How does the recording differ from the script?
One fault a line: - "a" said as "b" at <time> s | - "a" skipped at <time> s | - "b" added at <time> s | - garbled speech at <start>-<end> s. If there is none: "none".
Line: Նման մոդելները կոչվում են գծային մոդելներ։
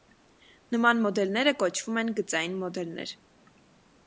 none